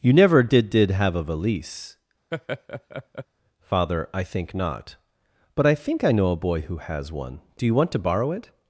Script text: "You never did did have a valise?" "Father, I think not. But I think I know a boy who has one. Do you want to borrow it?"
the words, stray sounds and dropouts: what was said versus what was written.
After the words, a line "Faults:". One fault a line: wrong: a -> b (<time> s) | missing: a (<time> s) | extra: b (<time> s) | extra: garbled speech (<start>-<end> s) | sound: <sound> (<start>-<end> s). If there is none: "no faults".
"You never did did have a valise?" "Father, I think not. But I think I know a boy who has one. Do you want to borrow it?"
Faults:
sound: laugh (2.3-3.3 s)